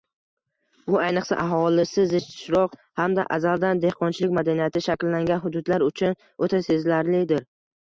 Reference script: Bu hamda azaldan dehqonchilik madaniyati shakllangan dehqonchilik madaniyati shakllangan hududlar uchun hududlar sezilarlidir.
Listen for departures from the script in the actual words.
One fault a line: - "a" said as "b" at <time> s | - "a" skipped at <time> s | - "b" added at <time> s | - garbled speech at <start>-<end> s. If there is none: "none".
- "hamda azaldan dehqonchilik madaniyati shakllangan" said as "ayniqsa aholisi zichroq hamda azaldan" at 1.0 s
- "hududlar" said as "o‘ta" at 6.5 s